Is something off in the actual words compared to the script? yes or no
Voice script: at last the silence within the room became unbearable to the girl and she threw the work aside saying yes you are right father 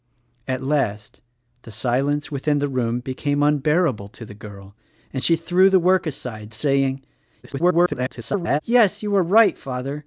yes